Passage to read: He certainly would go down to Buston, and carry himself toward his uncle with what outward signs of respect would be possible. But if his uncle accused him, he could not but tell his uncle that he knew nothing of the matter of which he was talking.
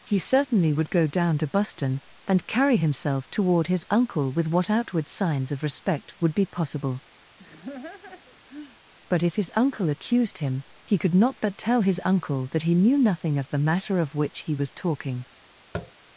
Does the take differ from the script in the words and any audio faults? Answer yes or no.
yes